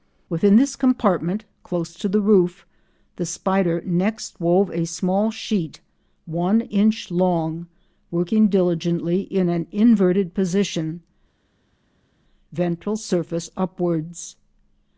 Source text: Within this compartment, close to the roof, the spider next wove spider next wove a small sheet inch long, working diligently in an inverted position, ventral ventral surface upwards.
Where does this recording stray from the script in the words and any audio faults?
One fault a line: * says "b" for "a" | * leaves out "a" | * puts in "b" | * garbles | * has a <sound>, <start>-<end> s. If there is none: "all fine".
* leaves out "spider next wove"
* puts in "one"
* leaves out "ventral"